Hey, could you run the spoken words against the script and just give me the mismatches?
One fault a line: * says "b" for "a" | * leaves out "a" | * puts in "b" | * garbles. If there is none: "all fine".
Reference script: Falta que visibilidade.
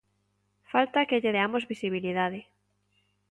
* puts in "lle deamos"